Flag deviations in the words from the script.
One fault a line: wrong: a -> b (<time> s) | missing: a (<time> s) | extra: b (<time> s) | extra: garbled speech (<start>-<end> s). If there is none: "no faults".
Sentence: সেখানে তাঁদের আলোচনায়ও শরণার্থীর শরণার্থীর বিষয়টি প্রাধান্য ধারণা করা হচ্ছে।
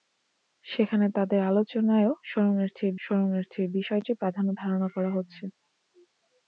no faults